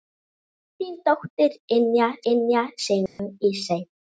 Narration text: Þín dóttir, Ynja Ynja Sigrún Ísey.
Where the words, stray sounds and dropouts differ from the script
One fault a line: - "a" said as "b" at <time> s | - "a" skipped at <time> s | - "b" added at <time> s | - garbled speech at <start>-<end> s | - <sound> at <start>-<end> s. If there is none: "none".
- dropout at 3.1-3.2 s